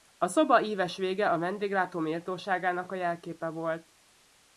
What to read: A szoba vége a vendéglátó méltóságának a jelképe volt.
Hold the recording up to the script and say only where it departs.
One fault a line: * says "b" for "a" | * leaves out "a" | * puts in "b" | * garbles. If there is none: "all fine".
* puts in "íves"